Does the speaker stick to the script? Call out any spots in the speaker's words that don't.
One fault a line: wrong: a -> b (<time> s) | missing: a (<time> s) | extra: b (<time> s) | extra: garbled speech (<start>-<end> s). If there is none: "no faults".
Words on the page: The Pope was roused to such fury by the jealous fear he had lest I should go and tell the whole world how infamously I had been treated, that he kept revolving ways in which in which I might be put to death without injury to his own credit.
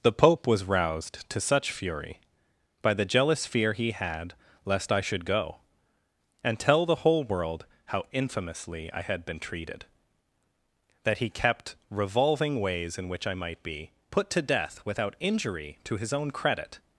missing: in which (13.3 s)